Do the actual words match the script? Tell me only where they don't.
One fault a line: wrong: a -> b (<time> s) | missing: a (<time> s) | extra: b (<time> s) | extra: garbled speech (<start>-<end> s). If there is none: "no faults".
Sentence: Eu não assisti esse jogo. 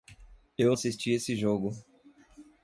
missing: não (0.7 s)